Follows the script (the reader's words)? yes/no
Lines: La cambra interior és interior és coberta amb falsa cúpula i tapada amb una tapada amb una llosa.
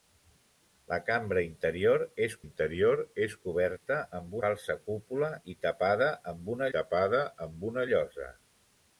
yes